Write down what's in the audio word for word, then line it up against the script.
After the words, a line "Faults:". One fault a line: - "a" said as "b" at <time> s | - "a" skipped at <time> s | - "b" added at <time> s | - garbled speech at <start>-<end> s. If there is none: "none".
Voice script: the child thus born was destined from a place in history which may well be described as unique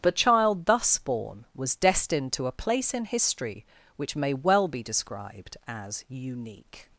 the child thus born was destined to a place in history which may well be described as unique
Faults:
- "from" said as "to" at 2.3 s